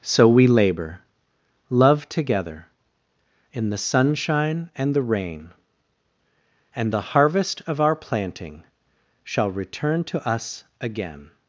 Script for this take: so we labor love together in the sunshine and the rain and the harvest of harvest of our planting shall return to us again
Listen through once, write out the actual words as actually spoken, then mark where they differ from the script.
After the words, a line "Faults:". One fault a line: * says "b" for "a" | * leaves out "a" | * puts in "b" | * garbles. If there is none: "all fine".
so we labor love together in the sunshine and the rain and the harvest of our planting shall return to us again
Faults:
* leaves out "harvest of"